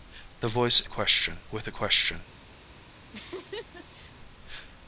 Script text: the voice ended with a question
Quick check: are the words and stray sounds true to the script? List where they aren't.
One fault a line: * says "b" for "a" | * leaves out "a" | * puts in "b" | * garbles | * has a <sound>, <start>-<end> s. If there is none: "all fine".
* says "question" for "ended"
* has a laugh, 3.1-4.1 s